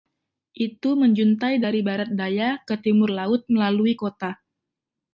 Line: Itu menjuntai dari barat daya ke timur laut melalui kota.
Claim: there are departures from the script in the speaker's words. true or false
false